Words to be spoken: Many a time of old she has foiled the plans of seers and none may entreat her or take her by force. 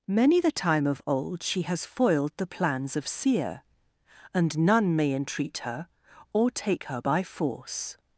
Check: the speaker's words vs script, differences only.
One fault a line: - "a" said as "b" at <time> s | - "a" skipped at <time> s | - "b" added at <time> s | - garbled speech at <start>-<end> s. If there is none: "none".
- "a" said as "the" at 0.4 s
- "seers" said as "seer" at 3.1 s